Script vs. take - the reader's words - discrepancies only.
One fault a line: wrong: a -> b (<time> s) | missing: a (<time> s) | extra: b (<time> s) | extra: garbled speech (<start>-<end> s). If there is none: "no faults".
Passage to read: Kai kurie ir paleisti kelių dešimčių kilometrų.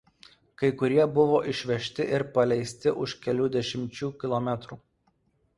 extra: buvo išvežti (1.2 s)
extra: už (3.1 s)